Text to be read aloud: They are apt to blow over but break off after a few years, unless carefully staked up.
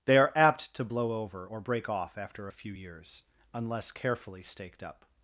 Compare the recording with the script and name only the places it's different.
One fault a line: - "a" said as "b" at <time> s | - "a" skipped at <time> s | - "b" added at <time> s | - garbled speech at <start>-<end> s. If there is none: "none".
- "but" said as "or" at 1.4 s